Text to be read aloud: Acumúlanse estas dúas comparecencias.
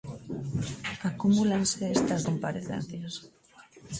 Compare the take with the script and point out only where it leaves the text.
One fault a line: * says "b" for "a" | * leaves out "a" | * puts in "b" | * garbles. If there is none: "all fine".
* leaves out "dúas"